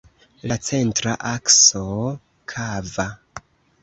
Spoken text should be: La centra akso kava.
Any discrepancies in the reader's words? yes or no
no